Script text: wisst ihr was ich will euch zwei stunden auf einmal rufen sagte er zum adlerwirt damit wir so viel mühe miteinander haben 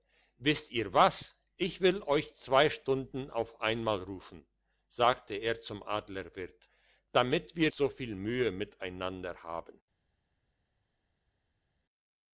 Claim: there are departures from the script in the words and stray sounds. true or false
false